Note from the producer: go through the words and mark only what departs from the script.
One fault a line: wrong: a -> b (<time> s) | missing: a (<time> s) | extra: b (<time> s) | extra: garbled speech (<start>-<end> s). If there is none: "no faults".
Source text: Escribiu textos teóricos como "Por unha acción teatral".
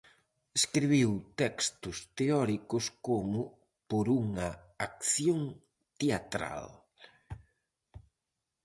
no faults